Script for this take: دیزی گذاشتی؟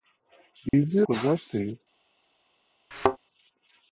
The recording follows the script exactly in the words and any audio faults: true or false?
false